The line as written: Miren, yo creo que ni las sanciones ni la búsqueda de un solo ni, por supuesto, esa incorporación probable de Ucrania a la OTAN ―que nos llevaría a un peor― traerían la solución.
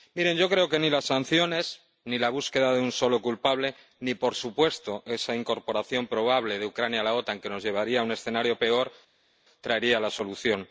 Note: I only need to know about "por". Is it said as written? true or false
true